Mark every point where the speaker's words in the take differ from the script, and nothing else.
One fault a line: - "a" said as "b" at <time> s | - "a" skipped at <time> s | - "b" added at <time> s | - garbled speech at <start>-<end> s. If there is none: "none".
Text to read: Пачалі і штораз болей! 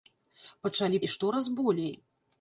none